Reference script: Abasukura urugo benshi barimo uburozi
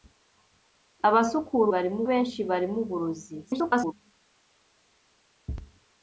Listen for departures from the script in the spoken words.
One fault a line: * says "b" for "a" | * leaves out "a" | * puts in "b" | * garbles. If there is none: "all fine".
* says "barimo" for "urugo"
* garbles